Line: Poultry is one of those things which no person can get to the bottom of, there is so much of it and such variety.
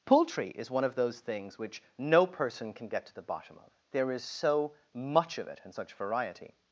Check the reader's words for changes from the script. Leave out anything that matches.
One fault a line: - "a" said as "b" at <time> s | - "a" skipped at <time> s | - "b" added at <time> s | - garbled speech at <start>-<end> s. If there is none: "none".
none